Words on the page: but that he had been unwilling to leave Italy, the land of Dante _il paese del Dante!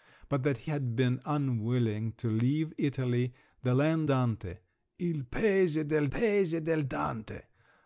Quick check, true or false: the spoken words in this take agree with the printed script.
false